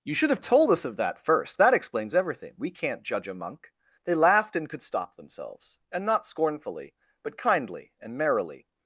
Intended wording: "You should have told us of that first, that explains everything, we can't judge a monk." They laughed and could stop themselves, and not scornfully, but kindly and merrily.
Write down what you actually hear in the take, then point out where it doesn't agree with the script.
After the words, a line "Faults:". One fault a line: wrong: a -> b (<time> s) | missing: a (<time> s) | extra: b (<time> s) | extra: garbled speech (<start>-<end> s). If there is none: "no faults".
"You should have told us of that first, that explains everything, we can't judge a monk." They laughed and could stop themselves, and not scornfully, but kindly and merrily.
Faults:
no faults